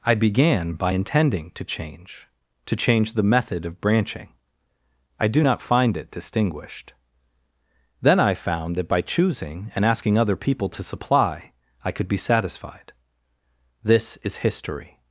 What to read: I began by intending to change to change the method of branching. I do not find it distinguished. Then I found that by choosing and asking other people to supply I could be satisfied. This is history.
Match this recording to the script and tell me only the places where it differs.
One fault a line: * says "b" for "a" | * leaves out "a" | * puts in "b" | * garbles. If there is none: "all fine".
all fine